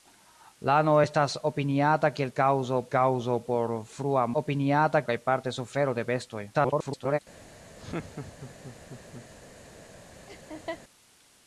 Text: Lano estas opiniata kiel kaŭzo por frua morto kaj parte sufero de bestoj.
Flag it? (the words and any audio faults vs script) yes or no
yes